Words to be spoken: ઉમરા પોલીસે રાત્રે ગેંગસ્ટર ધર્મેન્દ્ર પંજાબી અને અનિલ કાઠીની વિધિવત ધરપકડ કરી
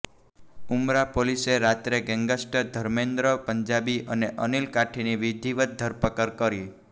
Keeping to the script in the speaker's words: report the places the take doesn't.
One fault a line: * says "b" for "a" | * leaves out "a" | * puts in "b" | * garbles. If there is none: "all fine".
all fine